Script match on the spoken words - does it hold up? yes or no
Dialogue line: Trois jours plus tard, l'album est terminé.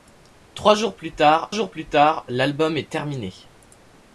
no